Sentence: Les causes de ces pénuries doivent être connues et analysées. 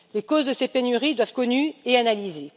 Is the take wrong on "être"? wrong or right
wrong